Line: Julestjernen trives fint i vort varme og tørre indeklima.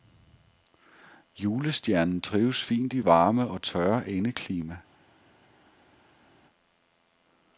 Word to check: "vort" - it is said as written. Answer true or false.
false